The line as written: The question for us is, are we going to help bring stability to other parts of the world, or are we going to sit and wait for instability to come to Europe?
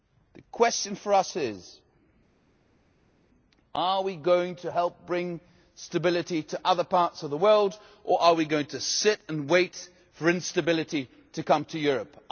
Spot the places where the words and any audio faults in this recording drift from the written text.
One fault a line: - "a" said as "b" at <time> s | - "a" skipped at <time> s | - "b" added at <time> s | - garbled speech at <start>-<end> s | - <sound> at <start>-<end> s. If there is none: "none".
none